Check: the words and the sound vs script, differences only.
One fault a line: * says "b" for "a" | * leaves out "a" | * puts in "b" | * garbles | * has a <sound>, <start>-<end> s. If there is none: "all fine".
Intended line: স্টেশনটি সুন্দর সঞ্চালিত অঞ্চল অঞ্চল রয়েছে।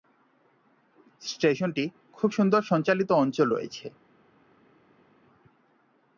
* puts in "খুব"
* leaves out "অঞ্চল"